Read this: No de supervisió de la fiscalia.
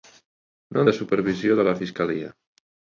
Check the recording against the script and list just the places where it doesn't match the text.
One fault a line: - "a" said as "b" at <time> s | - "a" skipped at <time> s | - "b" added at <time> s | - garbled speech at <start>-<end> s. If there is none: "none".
none